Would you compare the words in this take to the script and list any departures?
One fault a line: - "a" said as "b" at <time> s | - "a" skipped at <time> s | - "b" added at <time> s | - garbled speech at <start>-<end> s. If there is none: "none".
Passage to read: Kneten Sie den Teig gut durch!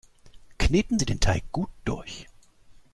none